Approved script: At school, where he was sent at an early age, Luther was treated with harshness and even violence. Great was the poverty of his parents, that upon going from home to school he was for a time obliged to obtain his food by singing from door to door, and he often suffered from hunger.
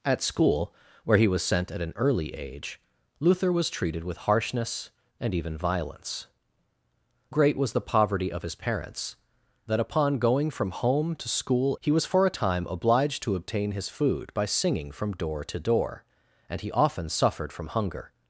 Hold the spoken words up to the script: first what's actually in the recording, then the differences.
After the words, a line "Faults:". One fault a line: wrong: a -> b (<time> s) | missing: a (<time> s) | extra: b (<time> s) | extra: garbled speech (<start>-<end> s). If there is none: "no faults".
At school, where he was sent at an early age, Luther was treated with harshness and even violence. Great was the poverty of his parents, that upon going from home to school he was for a time obliged to obtain his food by singing from door to door, and he often suffered from hunger.
Faults:
no faults